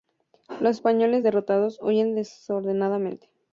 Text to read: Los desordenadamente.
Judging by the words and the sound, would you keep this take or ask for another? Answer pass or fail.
fail